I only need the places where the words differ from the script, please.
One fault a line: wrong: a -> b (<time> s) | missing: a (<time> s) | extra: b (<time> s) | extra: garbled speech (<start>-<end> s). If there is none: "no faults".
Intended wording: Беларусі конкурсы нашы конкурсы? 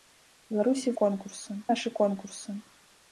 no faults